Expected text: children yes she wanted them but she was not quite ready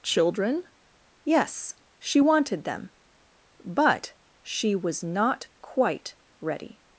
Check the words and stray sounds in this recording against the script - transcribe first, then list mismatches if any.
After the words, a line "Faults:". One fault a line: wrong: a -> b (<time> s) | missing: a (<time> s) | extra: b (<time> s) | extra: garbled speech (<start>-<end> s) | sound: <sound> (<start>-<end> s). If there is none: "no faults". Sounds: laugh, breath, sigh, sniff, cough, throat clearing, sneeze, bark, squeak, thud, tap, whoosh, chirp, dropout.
children yes she wanted them but she was not quite ready
Faults:
no faults